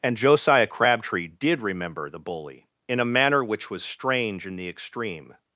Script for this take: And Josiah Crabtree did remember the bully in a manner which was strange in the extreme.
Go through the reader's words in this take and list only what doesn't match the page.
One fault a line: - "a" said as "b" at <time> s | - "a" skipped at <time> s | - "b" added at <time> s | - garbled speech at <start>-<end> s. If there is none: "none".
none